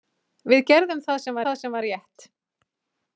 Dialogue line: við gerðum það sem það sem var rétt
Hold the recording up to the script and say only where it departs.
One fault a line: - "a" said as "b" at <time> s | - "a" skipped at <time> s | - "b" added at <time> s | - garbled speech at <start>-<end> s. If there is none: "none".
none